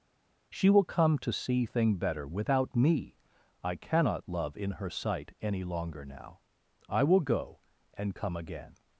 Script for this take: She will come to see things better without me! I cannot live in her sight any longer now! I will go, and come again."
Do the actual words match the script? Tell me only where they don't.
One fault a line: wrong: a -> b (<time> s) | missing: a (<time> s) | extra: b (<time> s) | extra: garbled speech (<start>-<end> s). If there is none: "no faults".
wrong: things -> thing (1.6 s)
wrong: live -> love (4.3 s)